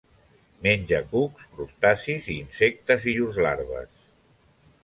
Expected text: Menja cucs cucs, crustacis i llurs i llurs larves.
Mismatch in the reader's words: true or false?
true